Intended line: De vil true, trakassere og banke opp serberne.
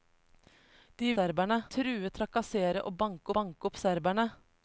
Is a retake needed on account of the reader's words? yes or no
yes